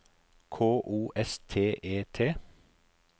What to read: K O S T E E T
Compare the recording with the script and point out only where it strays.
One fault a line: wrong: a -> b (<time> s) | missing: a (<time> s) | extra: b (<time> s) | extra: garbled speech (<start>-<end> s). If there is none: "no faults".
missing: E (2.0 s)